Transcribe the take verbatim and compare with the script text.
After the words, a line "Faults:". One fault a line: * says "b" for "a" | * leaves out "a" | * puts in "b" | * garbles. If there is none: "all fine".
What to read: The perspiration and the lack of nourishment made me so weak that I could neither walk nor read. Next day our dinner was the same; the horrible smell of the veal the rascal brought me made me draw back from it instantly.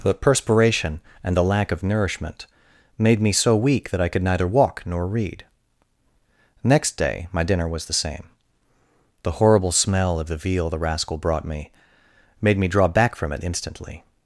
The perspiration and the lack of nourishment made me so weak that I could neither walk nor read. Next day my dinner was the same; the horrible smell of the veal the rascal brought me made me draw back from it instantly.
Faults:
* says "my" for "our"